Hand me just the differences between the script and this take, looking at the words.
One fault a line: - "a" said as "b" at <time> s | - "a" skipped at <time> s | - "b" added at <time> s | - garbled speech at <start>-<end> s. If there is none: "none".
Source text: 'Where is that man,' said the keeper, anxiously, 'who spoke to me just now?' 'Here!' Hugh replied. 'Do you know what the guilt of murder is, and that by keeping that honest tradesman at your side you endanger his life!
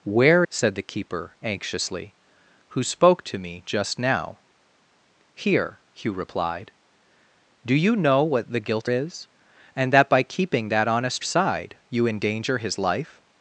- "is that man" skipped at 0.5 s
- "of murder" skipped at 8.9 s
- "tradesman at your" skipped at 11.2 s